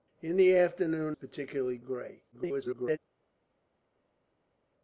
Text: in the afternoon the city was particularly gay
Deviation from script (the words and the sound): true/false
true